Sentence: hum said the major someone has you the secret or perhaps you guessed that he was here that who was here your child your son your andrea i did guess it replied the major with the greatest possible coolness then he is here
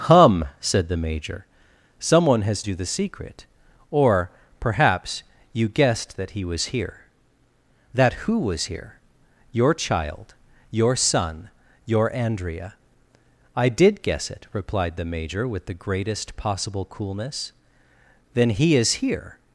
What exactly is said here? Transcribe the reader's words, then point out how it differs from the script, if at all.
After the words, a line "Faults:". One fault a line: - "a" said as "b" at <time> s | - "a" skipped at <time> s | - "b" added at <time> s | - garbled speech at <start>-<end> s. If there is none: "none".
hum said the major someone has you the secret or perhaps you guessed that he was here that who was here your child your son your andrea i did guess it replied the major with the greatest possible coolness then he is here
Faults:
none